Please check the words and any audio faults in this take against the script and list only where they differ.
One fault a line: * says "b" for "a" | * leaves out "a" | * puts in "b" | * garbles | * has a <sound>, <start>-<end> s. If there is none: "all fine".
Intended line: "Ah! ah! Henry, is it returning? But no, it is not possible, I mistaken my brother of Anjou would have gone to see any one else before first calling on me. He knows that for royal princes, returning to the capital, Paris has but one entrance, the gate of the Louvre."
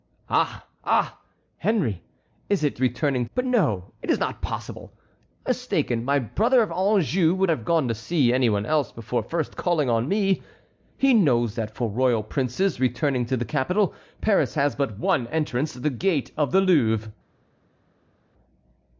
all fine